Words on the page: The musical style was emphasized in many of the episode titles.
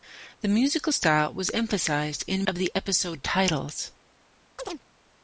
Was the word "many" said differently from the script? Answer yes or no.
yes